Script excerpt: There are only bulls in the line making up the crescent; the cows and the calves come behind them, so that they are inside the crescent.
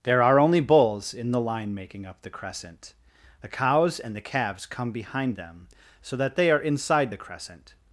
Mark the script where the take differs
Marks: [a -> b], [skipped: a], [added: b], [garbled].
There are only bulls in the line making up the crescent; the cows and the calves come behind them, so that they are inside the crescent.